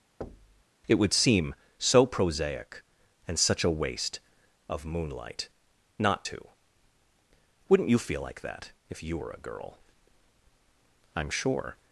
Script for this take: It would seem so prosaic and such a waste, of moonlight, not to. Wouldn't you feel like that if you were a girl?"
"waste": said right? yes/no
yes